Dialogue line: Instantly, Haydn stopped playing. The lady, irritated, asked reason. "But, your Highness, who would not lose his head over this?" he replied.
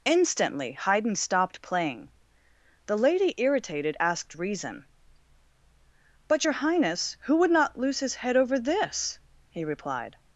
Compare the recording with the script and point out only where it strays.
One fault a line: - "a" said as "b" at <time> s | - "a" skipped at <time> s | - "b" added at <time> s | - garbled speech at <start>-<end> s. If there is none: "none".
none